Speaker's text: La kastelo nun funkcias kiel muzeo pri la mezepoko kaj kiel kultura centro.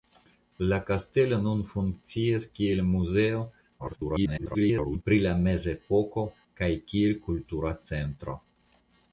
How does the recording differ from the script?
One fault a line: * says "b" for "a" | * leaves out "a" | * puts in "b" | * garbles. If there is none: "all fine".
* garbles